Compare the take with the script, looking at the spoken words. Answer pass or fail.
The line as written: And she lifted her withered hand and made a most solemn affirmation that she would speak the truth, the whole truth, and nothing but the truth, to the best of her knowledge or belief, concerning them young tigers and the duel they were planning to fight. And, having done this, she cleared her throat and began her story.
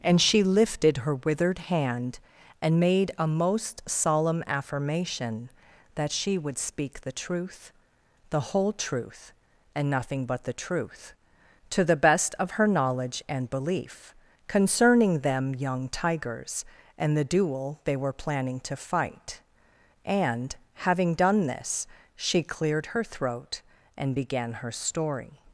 fail